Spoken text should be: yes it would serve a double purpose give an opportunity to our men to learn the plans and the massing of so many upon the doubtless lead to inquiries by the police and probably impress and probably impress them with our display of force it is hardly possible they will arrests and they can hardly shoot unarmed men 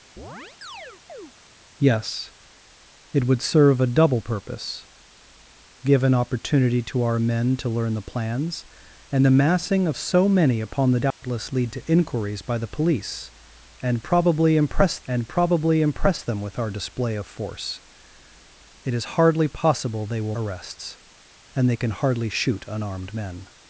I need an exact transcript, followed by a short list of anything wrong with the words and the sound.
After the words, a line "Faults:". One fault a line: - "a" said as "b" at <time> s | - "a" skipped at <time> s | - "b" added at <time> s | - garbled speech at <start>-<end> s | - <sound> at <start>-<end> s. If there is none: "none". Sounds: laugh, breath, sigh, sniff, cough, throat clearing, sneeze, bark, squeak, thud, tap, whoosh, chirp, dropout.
yes it would serve a double purpose give an opportunity to our men to learn the plans and the massing of so many upon the doubtless lead to inquiries by the police and probably impress and probably impress them with our display of force it is hardly possible they will arrests and they can hardly shoot unarmed men
Faults:
- chirp at 0.2-1.3 s
- dropout at 11.1-11.2 s